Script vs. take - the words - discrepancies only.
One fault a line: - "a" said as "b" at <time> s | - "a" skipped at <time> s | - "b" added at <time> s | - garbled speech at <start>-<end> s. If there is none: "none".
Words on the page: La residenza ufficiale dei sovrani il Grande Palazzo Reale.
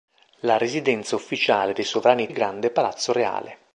none